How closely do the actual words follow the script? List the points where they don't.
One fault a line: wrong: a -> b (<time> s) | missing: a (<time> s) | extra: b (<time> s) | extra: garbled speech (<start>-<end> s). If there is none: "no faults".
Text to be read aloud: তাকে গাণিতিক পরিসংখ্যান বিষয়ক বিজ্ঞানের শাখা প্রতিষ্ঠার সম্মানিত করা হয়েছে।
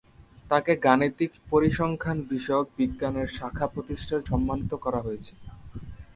no faults